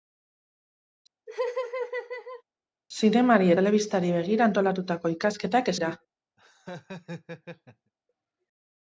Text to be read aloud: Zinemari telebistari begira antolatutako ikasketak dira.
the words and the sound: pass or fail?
fail